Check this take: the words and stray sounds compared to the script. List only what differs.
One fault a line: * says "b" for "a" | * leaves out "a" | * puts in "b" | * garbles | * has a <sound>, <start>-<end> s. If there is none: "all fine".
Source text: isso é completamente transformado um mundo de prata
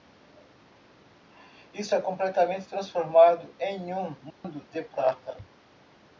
* puts in "em"
* has a dropout, 4.3-4.4 s